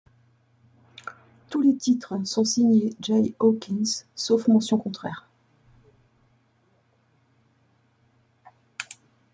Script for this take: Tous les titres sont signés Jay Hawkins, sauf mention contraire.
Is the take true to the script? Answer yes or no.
yes